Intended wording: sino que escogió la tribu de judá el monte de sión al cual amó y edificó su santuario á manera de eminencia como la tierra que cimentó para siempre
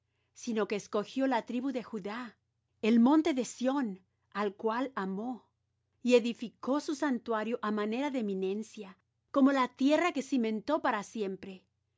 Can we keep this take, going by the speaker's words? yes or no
yes